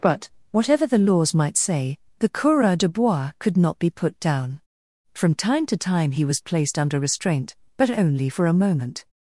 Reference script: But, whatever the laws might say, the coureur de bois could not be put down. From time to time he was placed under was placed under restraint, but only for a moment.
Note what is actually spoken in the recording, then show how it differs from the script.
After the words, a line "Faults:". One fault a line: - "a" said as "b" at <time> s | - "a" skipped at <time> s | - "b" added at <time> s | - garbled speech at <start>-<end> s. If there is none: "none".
But, whatever the laws might say, the coureur de bois could not be put down. From time to time he was placed under restraint, but only for a moment.
Faults:
- "was placed under" skipped at 7.0 s